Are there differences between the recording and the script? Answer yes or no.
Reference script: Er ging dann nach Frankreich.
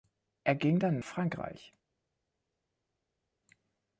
yes